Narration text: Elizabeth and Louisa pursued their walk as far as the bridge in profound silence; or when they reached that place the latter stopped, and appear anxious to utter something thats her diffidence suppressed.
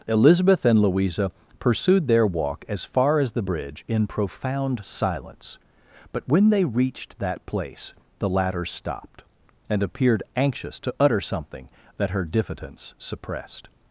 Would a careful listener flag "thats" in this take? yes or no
yes